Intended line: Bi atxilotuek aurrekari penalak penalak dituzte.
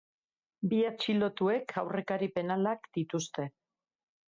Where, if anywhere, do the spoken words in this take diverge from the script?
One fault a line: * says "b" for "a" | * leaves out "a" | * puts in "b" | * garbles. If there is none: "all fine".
* leaves out "penalak"